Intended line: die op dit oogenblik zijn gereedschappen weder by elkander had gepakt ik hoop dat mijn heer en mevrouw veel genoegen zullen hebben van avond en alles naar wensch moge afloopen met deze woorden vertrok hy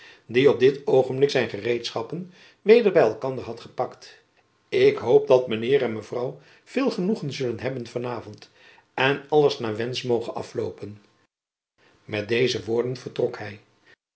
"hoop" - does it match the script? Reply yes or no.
yes